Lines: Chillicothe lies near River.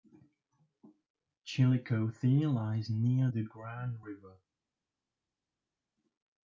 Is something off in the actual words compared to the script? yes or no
yes